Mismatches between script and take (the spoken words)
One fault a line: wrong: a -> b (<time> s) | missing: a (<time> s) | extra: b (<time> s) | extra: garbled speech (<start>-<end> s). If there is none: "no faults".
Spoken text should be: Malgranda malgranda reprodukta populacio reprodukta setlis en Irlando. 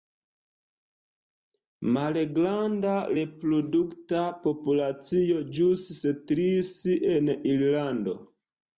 missing: malgranda (2.9 s)
wrong: reprodukta -> ĵus (5.6 s)